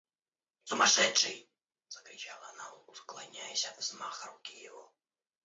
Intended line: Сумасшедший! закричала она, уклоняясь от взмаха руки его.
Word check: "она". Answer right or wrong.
right